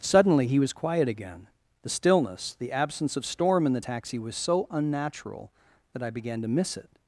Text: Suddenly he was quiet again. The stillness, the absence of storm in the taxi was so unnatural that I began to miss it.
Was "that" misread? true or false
false